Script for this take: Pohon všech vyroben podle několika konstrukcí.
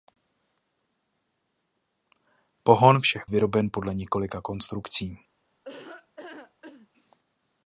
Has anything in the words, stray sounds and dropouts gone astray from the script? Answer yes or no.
yes